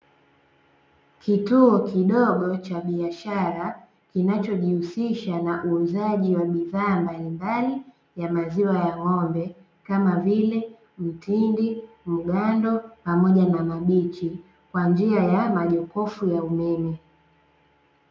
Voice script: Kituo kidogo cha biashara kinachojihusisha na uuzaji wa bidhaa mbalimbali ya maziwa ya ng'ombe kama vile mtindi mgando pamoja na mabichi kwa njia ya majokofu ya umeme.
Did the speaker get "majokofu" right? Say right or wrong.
right